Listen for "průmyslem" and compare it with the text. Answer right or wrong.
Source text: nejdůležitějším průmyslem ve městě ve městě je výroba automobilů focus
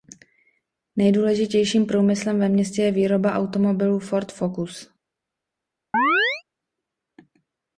right